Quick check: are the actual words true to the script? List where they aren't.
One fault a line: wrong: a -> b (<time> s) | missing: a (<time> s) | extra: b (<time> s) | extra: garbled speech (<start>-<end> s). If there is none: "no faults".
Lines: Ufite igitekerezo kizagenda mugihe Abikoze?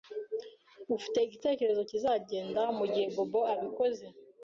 extra: Bobo (3.1 s)